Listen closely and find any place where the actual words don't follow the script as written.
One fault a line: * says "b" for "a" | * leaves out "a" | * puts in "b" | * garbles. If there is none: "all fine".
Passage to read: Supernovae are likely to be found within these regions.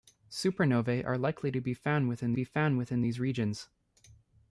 * puts in "be found within"